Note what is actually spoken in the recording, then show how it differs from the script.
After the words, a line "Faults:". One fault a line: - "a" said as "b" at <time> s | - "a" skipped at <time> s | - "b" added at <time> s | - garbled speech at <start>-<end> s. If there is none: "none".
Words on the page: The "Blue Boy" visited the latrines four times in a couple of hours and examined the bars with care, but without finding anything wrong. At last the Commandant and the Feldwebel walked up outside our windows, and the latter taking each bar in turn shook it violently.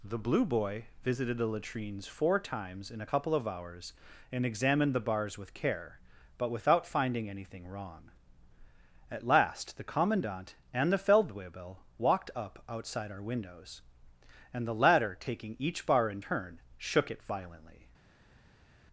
The "Blue Boy" visited the latrines four times in a couple of hours and examined the bars with care, but without finding anything wrong. At last the Commandant and the Feldwebel walked up outside our windows, and the latter taking each bar in turn shook it violently.
Faults:
none